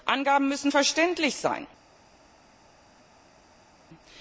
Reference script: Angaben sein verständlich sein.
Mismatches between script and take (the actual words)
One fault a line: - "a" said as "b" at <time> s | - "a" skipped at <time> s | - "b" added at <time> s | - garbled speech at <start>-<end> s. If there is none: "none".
- "sein" said as "müssen" at 0.5 s